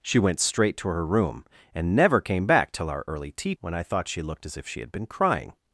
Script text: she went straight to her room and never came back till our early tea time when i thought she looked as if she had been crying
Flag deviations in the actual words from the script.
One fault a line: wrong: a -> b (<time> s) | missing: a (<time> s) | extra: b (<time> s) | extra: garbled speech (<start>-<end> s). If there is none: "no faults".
missing: time (3.5 s)